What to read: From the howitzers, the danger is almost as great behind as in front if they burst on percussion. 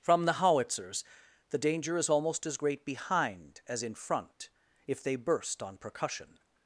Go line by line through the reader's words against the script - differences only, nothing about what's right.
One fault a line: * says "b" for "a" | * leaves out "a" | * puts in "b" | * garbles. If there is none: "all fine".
all fine